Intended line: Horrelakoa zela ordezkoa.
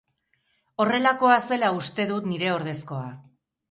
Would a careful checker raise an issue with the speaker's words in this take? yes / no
yes